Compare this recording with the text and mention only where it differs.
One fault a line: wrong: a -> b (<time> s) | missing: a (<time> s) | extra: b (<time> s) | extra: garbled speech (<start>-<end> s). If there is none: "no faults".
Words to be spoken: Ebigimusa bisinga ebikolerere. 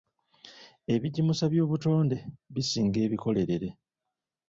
extra: by'obutonde (1.5 s)